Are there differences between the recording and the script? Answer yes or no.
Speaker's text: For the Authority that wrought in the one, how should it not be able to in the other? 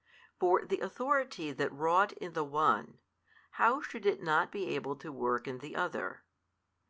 yes